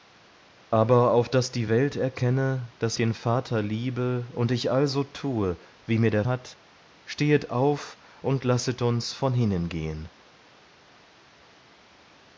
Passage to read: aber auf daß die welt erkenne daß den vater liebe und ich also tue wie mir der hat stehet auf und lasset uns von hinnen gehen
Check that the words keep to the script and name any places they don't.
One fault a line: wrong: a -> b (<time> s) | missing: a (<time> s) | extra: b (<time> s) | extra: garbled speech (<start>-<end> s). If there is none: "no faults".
no faults